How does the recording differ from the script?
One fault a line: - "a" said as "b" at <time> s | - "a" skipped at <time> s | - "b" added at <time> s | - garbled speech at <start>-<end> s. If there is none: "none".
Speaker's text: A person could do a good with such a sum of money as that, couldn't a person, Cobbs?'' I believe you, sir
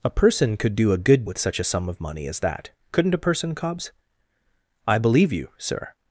none